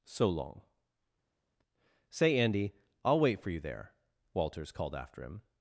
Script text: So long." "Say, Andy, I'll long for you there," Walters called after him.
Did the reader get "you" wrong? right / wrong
right